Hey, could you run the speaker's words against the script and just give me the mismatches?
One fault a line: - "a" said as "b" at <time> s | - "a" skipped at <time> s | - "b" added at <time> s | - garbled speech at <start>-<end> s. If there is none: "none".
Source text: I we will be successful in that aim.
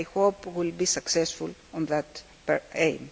- "hope" added at 0.1 s